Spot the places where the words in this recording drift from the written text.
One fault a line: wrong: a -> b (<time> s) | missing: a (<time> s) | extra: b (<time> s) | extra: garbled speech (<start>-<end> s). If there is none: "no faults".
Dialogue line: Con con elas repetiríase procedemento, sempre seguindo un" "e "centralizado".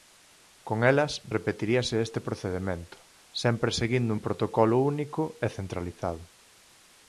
missing: con (0.8 s)
extra: este (2.0 s)
extra: protocolo único (4.2 s)